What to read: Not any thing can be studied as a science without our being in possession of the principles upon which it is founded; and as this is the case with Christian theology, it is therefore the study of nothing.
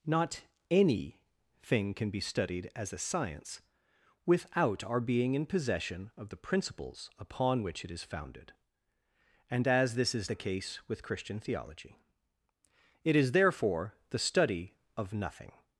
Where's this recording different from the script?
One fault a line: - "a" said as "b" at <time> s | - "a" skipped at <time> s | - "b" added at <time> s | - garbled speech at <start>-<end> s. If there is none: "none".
none